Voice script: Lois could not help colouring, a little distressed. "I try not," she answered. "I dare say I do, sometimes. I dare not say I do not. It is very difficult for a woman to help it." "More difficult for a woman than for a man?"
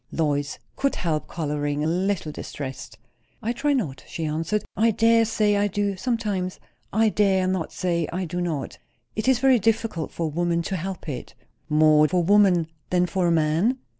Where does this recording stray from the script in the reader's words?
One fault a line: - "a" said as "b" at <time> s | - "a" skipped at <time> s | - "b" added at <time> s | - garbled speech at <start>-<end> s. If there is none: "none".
- "not" skipped at 0.9 s
- "difficult" skipped at 12.1 s